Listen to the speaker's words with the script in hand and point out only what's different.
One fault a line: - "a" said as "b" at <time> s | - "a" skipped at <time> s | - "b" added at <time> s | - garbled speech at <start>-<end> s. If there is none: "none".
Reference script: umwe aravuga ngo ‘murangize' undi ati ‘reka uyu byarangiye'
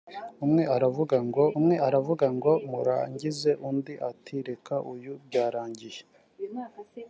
- "umwe aravuga ngo" added at 1.6 s